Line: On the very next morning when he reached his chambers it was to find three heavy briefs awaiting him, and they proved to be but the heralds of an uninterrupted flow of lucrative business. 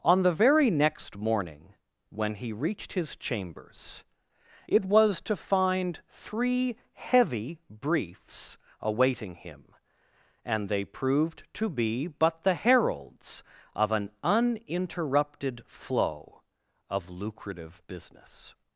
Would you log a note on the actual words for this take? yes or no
no